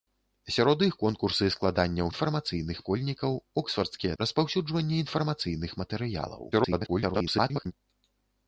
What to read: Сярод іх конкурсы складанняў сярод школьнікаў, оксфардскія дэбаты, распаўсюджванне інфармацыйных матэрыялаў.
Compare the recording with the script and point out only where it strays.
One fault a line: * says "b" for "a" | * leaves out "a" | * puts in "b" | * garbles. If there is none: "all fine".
* says "інфармацыйных" for "сярод"
* leaves out "дэбаты"
* garbles